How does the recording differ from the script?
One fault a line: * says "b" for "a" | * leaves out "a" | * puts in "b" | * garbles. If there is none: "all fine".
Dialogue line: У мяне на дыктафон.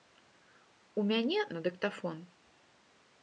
all fine